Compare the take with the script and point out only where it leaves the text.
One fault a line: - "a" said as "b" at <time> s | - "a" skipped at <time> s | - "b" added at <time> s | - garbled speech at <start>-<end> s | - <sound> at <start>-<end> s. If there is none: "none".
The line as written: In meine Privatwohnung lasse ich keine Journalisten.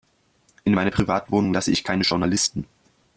none